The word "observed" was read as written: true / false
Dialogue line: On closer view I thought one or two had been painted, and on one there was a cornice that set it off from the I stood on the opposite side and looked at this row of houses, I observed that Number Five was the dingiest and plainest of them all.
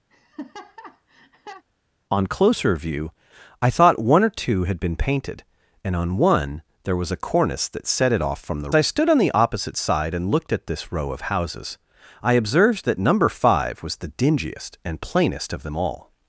true